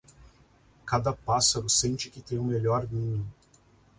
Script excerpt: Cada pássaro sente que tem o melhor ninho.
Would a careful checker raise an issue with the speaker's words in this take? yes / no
no